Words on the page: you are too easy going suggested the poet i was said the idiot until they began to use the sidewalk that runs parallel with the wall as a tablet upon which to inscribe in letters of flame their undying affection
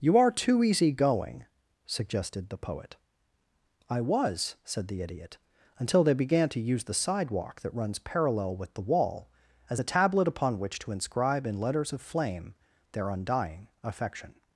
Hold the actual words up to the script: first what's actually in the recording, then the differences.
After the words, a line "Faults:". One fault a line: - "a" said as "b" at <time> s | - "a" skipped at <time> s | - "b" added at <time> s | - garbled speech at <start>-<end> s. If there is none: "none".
you are too easy going suggested the poet i was said the idiot until they began to use the sidewalk that runs parallel with the wall as a tablet upon which to inscribe in letters of flame their undying affection
Faults:
none